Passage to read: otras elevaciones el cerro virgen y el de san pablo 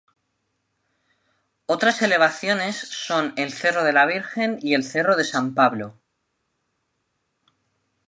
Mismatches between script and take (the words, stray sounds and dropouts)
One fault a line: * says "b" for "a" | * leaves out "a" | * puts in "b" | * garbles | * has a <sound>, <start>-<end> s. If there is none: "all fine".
* puts in "son"
* puts in "de la"
* puts in "cerro"